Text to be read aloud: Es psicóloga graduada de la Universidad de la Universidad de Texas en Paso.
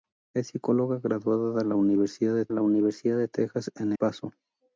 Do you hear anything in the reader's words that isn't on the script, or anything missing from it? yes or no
no